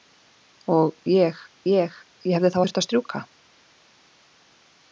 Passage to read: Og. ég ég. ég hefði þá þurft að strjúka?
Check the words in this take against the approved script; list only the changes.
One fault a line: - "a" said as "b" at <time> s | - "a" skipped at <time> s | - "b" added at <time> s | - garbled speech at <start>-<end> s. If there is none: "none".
none